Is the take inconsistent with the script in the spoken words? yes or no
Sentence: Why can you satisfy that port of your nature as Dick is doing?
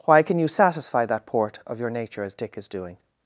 no